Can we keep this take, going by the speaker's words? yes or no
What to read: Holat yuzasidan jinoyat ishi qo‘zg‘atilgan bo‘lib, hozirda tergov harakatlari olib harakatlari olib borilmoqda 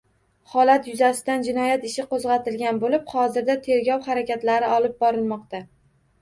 no